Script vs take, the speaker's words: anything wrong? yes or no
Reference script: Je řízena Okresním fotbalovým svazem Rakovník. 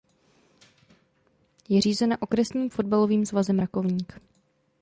no